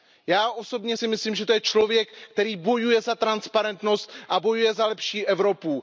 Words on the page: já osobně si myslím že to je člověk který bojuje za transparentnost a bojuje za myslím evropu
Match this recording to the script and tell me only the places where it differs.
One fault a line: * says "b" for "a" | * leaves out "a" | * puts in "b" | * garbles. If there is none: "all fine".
* says "lepší" for "myslím"